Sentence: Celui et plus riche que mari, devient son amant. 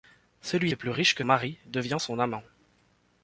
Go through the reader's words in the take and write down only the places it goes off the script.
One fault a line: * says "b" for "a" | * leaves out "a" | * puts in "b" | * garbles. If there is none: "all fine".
all fine